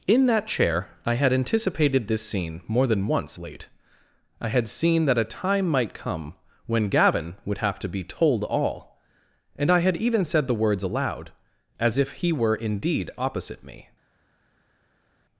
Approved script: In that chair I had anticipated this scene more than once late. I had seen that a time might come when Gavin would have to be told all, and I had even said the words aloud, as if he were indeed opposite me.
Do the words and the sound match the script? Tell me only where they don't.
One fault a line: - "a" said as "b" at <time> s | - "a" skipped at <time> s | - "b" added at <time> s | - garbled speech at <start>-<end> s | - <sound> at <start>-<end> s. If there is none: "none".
none